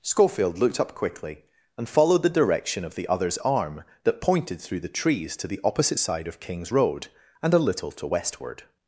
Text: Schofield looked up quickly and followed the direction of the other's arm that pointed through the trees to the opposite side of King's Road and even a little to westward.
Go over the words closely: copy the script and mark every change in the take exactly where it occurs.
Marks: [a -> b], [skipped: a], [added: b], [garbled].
Schofield looked up quickly and followed the direction of the other's arm that pointed through the trees to the opposite side of King's Road and [skipped: even] a little to westward.